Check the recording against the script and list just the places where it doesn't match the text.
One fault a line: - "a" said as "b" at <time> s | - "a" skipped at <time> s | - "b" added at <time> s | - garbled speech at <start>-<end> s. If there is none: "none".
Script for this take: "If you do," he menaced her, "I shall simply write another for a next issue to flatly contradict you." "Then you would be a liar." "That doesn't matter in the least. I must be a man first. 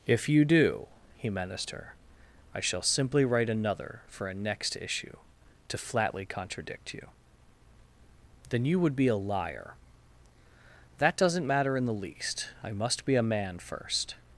none